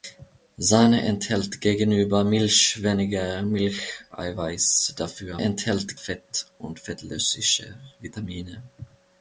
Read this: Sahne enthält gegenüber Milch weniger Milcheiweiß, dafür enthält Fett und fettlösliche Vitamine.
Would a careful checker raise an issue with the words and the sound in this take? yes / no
no